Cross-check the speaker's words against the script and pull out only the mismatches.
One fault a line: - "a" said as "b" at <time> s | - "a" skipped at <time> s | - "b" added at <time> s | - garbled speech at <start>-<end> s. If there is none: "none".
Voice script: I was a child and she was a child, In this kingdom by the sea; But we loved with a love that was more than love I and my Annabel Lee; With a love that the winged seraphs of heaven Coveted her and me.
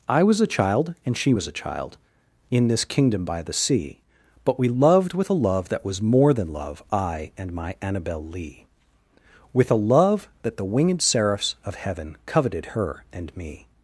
none